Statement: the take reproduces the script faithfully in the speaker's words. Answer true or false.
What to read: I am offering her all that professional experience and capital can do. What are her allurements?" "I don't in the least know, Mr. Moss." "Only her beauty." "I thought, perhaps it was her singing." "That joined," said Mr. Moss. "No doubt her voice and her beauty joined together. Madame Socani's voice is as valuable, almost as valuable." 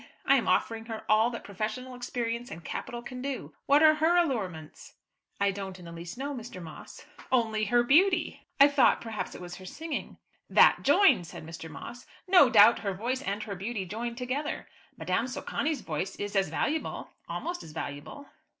true